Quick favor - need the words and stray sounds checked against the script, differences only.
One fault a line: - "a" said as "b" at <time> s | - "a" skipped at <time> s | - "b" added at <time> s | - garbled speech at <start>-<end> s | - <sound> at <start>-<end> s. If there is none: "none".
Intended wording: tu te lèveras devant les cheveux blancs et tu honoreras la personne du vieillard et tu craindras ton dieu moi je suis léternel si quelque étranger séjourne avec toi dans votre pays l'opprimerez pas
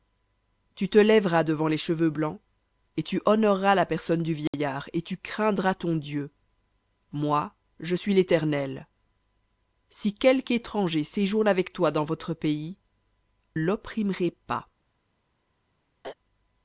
- dropout at 4.5-4.5 s
- throat clearing at 16.0-16.2 s